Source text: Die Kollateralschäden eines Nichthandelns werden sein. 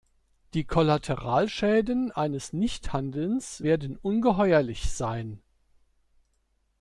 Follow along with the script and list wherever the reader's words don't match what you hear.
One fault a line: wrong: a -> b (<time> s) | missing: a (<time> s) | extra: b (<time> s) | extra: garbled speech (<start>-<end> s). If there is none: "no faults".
extra: ungeheuerlich (4.0 s)